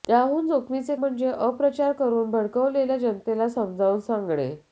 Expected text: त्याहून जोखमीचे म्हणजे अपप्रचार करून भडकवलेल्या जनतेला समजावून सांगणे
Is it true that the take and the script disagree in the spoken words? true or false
false